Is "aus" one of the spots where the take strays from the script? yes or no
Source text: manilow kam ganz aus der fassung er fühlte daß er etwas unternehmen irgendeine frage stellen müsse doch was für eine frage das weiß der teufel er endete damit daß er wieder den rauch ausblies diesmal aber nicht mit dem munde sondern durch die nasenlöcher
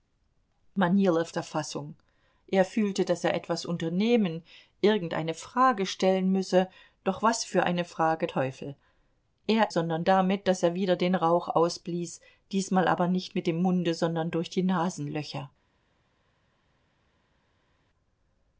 yes